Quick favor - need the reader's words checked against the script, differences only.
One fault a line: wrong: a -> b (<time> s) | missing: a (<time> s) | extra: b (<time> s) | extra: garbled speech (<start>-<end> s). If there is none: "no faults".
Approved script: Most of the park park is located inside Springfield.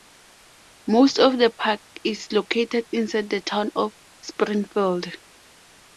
missing: park (1.8 s)
extra: the Town of (3.3 s)